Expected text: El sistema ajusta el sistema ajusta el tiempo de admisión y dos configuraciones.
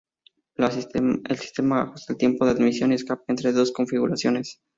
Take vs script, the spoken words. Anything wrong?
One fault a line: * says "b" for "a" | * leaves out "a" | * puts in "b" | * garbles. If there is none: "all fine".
* leaves out "sistema ajusta el"
* puts in "escape entre"